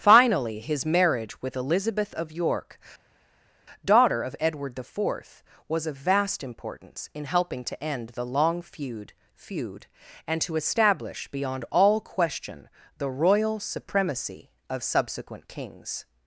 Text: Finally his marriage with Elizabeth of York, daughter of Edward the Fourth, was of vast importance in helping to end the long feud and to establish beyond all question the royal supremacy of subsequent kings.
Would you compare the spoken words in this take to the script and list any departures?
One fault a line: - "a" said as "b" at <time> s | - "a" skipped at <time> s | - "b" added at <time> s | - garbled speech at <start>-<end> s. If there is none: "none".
- "feud" added at 9.3 s